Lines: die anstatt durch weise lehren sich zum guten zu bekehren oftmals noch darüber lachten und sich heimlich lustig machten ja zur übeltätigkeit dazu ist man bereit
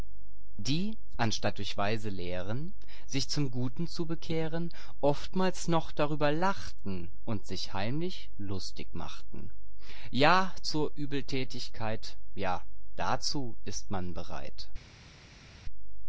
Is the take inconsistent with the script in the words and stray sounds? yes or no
yes